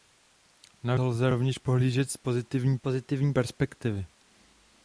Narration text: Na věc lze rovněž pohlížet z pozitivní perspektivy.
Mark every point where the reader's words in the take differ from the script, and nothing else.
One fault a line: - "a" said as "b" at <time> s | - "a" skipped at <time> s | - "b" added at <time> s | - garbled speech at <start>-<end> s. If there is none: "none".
- "věc" skipped at 0.9 s
- "pozitivní" added at 2.8 s